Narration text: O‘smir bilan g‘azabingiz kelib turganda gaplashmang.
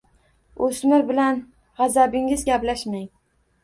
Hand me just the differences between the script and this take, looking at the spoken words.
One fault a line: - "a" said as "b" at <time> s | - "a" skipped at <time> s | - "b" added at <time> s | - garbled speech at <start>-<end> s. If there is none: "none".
- "kelib turganda" skipped at 2.5 s